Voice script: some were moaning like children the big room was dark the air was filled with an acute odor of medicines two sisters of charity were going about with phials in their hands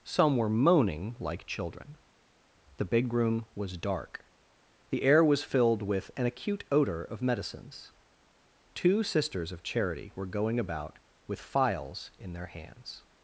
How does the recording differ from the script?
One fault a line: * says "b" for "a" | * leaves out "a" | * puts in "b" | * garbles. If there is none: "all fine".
all fine